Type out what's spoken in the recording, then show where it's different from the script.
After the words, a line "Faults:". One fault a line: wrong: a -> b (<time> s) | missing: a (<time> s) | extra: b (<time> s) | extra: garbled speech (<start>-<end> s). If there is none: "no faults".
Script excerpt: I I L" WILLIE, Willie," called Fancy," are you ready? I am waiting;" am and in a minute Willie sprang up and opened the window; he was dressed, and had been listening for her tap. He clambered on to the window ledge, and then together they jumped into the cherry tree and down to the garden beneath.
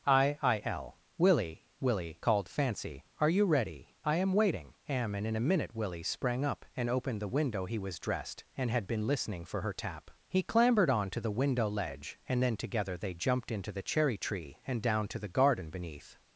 I I L" WILLIE, Willie," called Fancy," are you ready? I am waiting;" am and in a minute Willie sprang up and opened the window; he was dressed, and had been listening for her tap. He clambered on to the window ledge, and then together they jumped into the cherry tree and down to the garden beneath.
Faults:
no faults